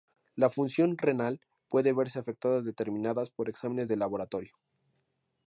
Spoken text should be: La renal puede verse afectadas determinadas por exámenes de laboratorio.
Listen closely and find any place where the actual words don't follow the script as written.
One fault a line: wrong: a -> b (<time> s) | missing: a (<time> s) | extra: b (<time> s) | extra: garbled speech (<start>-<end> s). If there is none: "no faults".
extra: función (0.5 s)